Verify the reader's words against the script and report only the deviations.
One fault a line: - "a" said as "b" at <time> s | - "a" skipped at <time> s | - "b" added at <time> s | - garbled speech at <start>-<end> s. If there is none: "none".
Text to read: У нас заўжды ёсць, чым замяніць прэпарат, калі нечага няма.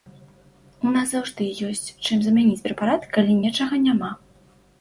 none